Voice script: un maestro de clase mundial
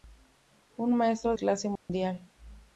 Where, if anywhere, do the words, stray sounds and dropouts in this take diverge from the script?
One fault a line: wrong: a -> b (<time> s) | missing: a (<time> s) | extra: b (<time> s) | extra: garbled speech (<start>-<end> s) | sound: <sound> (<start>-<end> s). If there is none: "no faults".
missing: de (1.4 s)
sound: dropout (1.8-1.9 s)